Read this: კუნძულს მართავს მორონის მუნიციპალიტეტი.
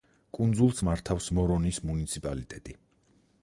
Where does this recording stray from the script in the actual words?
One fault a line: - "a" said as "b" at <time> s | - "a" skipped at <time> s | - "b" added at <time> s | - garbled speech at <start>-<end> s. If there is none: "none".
none